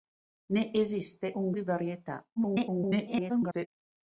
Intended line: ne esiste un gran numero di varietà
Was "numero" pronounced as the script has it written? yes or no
no